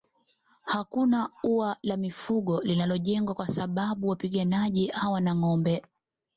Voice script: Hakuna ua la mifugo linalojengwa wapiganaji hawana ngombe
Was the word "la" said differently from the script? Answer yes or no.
no